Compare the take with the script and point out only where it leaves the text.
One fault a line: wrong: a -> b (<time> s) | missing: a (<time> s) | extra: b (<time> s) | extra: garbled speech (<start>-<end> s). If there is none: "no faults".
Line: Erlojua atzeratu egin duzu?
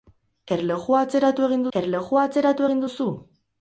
extra: erlojua atzeratu egin (1.8 s)